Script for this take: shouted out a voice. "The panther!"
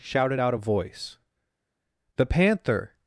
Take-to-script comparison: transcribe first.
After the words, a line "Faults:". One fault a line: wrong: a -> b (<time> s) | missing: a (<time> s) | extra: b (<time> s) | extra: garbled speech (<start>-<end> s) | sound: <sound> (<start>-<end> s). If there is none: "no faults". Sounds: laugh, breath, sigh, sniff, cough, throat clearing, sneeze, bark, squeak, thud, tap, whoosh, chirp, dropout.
shouted out a voice. "The panther!"
Faults:
no faults